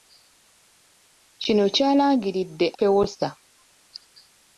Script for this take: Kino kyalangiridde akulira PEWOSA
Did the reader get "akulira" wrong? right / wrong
wrong